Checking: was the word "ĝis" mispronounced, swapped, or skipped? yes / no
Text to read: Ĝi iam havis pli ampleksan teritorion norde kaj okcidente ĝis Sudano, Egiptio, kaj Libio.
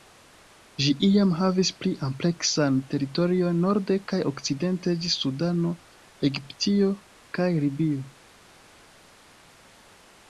no